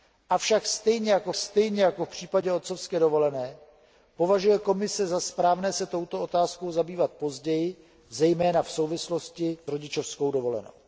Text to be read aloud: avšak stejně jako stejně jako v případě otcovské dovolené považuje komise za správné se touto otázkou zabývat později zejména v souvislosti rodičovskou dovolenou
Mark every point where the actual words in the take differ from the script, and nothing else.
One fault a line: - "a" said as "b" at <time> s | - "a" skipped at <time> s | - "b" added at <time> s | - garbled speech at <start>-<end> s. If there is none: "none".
none